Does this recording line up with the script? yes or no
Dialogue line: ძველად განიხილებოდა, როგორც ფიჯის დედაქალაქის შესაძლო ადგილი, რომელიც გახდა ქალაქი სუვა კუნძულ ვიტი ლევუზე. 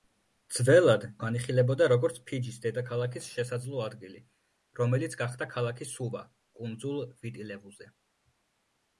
yes